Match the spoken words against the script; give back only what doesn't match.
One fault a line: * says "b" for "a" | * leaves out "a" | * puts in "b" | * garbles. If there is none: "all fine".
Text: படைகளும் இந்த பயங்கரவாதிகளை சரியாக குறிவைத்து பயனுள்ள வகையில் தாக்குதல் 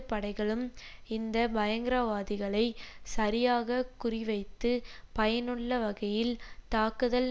all fine